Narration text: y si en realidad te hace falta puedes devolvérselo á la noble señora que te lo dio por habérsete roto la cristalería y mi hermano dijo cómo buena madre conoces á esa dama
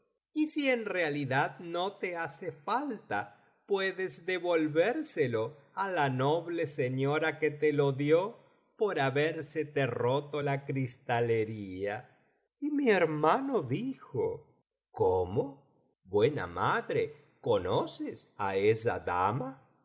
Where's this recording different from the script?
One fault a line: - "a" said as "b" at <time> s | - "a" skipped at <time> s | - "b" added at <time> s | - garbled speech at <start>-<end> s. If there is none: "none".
- "no" added at 1.6 s